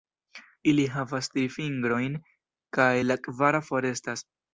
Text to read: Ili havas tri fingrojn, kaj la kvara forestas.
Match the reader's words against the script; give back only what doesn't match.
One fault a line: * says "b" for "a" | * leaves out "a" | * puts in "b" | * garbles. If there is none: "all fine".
all fine